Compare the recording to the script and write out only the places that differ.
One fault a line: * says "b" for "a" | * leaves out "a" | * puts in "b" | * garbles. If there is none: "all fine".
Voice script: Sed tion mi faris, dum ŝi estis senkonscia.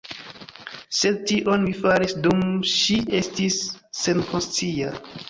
all fine